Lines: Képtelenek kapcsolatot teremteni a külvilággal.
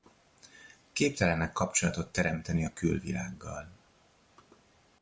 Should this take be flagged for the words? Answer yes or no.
no